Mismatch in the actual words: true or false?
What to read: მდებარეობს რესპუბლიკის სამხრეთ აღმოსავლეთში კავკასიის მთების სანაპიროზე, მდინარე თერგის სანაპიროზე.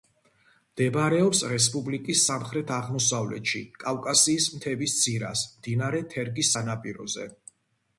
true